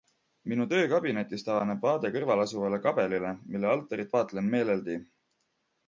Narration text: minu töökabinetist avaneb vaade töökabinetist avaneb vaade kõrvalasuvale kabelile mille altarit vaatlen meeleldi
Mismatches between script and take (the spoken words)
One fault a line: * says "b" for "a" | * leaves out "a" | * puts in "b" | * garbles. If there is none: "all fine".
* leaves out "töökabinetist avaneb vaade"